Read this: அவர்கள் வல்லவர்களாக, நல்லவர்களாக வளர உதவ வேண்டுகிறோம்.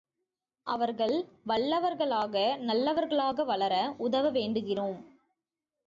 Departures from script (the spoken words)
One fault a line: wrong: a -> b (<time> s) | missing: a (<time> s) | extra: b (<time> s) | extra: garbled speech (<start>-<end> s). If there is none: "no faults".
no faults